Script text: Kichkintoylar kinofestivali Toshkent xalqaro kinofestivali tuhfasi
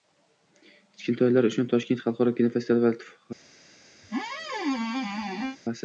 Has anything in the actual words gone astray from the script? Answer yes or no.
yes